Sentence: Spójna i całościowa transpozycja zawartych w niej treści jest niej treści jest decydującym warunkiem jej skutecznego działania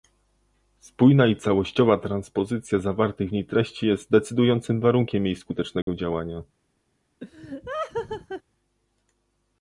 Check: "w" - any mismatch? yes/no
no